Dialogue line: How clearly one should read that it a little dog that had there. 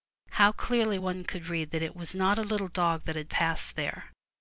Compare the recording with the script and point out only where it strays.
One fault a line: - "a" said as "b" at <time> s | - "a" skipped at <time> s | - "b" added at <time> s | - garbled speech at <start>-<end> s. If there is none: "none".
- "should" said as "could" at 1.2 s
- "was not" added at 1.9 s
- "passed" added at 3.3 s